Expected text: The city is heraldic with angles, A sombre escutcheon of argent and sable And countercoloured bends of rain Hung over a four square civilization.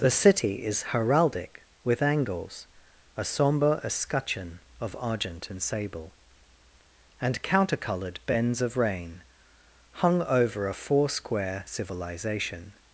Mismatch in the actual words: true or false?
false